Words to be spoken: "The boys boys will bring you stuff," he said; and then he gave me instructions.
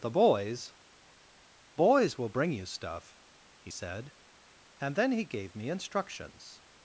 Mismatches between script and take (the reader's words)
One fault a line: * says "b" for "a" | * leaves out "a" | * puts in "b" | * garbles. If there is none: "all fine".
all fine